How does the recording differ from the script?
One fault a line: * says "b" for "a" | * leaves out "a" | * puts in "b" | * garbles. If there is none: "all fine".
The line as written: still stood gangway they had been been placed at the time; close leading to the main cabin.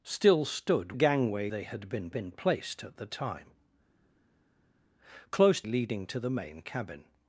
all fine